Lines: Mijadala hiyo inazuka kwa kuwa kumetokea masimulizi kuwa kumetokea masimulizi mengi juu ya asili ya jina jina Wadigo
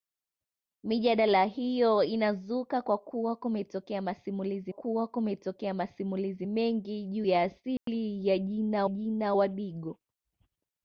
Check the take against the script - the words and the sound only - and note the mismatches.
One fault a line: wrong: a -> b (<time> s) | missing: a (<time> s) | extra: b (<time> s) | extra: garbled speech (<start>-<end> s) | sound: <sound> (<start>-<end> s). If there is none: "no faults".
sound: dropout (7.8-7.9 s)